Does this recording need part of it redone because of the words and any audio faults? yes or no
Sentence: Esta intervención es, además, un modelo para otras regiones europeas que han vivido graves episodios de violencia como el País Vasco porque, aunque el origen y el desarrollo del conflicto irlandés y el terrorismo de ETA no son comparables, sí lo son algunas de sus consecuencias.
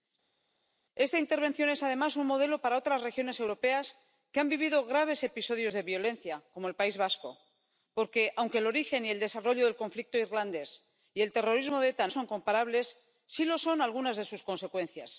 yes